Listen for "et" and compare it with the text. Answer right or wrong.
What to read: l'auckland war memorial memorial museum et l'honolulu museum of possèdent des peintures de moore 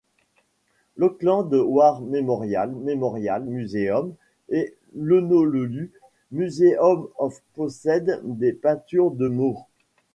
right